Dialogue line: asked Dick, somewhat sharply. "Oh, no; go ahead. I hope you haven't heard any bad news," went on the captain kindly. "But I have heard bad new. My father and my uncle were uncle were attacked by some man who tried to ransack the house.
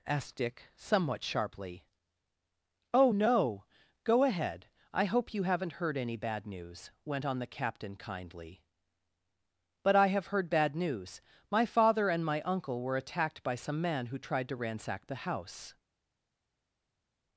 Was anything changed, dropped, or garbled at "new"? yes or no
yes